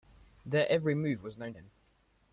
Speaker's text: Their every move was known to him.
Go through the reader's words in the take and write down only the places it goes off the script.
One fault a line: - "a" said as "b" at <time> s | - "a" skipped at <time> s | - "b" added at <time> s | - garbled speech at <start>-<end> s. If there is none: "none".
- "to" skipped at 1.5 s